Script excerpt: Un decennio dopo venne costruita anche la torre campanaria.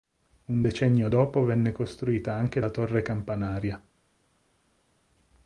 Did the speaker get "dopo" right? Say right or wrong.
right